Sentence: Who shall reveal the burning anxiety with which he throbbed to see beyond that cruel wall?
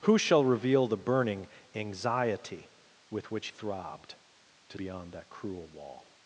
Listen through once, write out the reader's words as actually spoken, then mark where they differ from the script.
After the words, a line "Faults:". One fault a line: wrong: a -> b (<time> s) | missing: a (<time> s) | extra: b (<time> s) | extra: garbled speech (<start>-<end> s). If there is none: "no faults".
Who shall reveal the burning anxiety with which throbbed to beyond that cruel wall?
Faults:
missing: he (3.5 s)
missing: see (4.8 s)